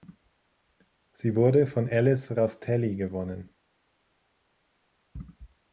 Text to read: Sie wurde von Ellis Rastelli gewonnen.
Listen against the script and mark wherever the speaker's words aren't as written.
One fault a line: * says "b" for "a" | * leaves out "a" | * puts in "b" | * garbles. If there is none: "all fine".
all fine